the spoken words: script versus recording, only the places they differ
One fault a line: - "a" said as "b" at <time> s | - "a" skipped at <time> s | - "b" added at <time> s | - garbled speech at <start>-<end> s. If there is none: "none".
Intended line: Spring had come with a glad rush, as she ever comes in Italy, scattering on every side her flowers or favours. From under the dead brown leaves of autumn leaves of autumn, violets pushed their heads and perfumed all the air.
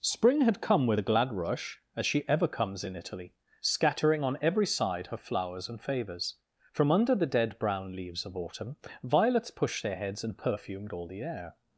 - "or" said as "and" at 5.7 s
- "leaves of autumn" skipped at 8.8 s